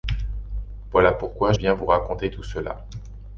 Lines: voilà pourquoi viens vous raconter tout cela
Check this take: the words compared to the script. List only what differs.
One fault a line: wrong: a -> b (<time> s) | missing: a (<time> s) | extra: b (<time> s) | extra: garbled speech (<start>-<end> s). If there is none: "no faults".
no faults